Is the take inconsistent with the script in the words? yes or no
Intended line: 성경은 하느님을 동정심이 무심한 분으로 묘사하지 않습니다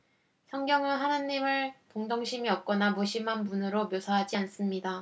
yes